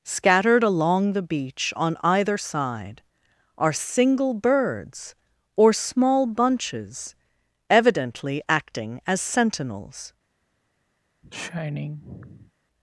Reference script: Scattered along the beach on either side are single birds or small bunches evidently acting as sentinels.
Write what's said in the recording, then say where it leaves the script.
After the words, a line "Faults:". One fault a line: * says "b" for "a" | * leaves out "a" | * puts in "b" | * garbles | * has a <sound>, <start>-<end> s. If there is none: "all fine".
Scattered along the beach on either side are single birds or small bunches evidently acting as sentinels.
Faults:
* has a sigh, 11.2-12.5 s